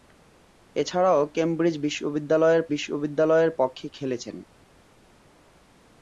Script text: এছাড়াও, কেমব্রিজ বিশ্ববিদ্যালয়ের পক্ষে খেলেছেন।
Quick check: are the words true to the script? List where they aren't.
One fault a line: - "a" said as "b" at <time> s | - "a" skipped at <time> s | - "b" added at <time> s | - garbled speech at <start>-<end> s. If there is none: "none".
- "বিশ্ববিদ্যালয়ের" added at 2.7 s